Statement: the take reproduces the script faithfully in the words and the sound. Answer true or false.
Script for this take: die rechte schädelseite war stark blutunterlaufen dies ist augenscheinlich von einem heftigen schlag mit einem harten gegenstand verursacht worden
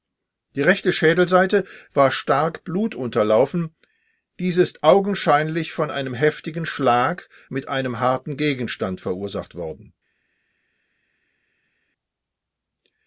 true